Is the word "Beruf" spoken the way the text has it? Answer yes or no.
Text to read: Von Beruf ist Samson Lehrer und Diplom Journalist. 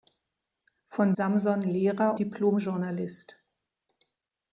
no